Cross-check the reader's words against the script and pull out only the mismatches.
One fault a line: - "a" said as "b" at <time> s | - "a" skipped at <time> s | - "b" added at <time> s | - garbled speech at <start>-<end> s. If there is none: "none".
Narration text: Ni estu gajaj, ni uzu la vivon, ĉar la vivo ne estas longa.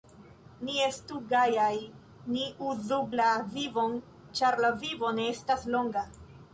none